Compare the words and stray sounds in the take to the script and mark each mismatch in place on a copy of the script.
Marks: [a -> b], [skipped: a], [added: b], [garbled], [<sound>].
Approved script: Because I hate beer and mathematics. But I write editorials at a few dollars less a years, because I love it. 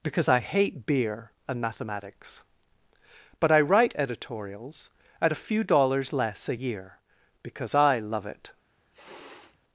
Because I hate beer and mathematics. But I write editorials at a few dollars less a [years, -> year] because I love it. [sniff]